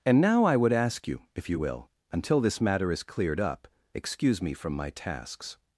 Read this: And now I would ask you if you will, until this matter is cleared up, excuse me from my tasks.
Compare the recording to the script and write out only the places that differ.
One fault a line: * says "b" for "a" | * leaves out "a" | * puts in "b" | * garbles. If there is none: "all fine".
all fine